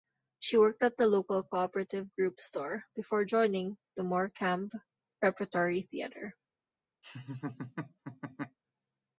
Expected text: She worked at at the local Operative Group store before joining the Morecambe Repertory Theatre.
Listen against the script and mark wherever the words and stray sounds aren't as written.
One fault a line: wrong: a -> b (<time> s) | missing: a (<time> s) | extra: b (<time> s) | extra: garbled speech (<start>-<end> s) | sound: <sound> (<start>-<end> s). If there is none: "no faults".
missing: at (1.0 s)
extra: Co (1.4 s)
sound: laugh (7.0-8.6 s)